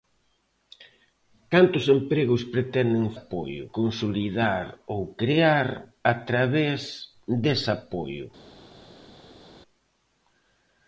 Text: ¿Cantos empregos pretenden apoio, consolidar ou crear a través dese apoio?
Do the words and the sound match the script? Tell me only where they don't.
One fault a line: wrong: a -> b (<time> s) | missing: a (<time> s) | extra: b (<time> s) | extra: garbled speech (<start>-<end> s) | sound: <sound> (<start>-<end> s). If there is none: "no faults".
no faults